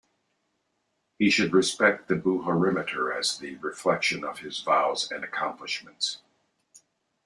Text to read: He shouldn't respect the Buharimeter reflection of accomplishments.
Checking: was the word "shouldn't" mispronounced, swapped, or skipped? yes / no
yes